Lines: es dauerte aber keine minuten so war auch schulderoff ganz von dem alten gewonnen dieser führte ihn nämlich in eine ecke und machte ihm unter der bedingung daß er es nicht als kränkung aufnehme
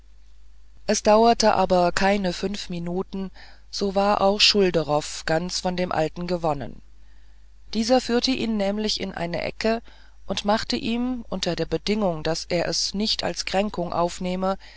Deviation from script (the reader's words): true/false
true